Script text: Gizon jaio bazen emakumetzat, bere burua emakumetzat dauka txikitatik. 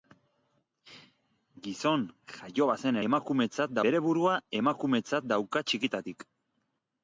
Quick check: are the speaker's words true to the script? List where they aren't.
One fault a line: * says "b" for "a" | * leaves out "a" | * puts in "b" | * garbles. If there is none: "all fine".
all fine